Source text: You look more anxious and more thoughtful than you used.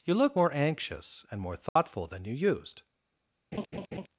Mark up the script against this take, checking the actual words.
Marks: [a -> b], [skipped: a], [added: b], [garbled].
You look more anxious and more thoughtful than you used.